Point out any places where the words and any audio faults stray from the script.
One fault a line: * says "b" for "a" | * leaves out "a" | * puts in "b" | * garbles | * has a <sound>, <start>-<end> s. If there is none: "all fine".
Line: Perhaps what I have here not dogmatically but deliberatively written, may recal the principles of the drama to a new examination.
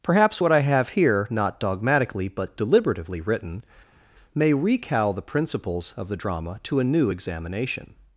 all fine